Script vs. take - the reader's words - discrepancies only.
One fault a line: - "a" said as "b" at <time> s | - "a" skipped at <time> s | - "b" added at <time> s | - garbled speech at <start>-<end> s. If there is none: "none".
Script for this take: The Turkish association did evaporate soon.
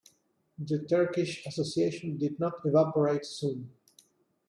- "not" added at 2.4 s